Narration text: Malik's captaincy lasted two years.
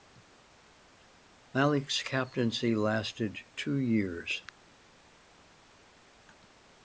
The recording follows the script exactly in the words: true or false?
true